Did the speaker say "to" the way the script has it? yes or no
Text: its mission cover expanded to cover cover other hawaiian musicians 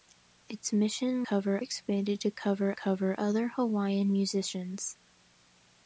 yes